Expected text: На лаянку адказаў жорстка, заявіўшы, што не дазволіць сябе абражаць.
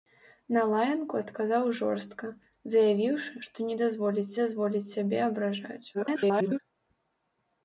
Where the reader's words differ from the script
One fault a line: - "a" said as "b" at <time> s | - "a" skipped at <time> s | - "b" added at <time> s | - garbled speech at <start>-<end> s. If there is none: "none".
- "дазволіць" added at 4.4 s
- garbled speech at 5.9-6.6 s